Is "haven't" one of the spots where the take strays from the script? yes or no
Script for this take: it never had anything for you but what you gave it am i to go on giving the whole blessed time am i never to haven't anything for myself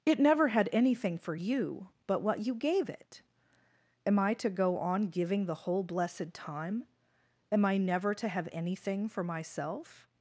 yes